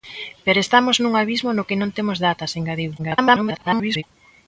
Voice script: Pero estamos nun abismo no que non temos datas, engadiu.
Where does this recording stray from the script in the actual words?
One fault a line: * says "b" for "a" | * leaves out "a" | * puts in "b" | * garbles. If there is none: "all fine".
* garbles